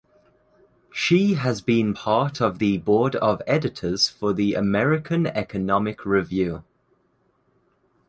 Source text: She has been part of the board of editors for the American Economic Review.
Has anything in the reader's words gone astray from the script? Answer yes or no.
no